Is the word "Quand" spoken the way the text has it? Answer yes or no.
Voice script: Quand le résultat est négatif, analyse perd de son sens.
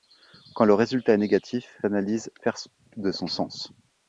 yes